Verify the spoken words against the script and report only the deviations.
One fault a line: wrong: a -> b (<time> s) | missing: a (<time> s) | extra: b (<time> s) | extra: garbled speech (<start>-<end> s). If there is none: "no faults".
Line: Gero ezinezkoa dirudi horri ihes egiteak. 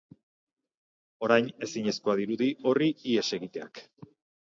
wrong: Gero -> Orain (1.3 s)